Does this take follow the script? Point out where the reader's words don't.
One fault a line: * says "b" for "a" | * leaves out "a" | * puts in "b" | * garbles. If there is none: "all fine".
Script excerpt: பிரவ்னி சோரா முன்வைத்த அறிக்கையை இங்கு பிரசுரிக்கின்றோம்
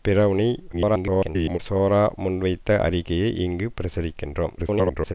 * garbles
* garbles